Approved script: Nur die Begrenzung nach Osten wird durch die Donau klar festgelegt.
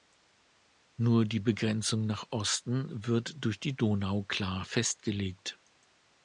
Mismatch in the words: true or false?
false